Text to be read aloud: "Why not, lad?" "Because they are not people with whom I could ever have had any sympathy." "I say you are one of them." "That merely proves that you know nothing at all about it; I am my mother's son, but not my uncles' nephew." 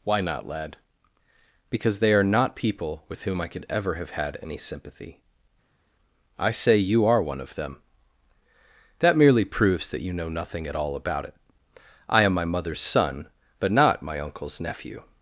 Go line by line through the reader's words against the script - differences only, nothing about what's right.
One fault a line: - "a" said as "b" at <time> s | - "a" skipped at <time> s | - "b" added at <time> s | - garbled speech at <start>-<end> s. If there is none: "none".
none